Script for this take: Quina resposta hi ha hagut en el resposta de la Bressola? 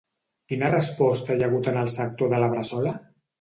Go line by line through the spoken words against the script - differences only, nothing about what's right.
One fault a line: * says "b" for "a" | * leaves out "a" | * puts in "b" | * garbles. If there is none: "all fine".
* says "sector" for "resposta"